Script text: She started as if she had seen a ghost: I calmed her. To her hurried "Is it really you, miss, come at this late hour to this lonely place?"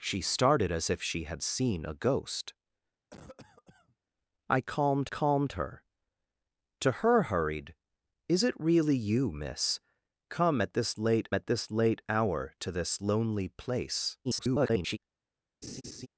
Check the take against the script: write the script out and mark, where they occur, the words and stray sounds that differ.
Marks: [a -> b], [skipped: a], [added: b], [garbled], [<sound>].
She started as if she had seen a ghost: [cough] I calmed [added: calmed] her. To her hurried "Is it really you, miss, come at this late [added: at this late] hour to this lonely place?" [garbled] [laugh]